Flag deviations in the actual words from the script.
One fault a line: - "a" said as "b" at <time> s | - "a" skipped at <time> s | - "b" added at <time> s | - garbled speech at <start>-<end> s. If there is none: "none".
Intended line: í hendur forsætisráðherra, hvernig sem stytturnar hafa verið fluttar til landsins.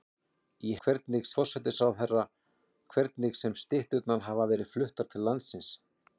- "hendur" said as "hvernig" at 0.9 s